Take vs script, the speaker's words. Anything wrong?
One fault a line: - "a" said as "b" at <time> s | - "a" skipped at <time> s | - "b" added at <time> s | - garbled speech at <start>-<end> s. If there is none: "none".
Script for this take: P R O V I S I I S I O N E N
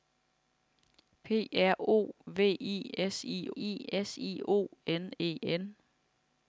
none